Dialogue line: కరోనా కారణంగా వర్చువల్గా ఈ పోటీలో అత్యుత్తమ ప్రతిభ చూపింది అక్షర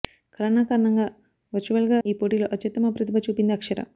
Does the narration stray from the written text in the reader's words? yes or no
no